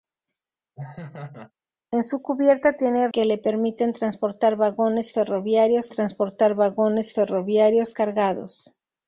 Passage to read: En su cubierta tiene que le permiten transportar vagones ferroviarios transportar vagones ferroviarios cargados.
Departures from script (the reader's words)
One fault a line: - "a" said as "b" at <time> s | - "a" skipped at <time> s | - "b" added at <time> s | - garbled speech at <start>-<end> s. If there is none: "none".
none